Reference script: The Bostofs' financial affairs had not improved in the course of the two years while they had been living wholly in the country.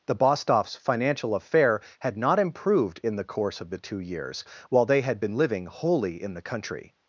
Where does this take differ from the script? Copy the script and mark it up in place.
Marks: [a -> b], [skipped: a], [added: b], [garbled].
The Bostofs' financial [affairs -> affair] had not improved in the course of the two years while they had been living wholly in the country.